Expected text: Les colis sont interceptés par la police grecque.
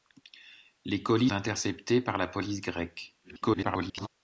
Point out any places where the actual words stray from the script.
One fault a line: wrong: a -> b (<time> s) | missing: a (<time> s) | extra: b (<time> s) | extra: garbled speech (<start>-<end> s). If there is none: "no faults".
missing: sont (1.3 s)
extra: garbled speech (3.2-4.1 s)